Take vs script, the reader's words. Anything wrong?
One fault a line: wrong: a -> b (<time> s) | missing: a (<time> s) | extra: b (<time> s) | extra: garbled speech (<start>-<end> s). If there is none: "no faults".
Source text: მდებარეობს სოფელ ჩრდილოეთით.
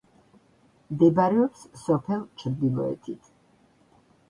no faults